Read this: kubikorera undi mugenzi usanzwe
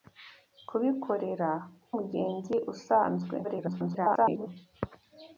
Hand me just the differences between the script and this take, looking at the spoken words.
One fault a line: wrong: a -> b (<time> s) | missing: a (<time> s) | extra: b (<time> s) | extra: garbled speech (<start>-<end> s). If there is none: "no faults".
missing: undi (1.5 s)
extra: garbled speech (3.4-4.5 s)